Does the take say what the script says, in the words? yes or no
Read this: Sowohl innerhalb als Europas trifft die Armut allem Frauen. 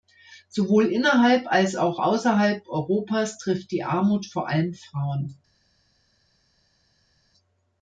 no